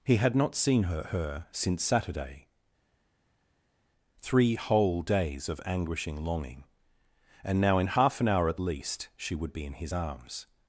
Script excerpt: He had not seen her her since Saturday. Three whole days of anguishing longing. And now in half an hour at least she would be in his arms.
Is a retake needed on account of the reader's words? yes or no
no